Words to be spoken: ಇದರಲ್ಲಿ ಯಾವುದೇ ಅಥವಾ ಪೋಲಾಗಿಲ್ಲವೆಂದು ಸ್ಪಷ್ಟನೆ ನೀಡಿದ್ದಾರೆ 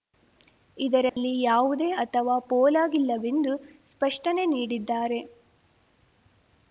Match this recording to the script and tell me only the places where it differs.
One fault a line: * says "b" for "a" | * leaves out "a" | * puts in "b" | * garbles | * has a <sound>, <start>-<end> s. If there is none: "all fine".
* has a dropout, 1.1-1.2 s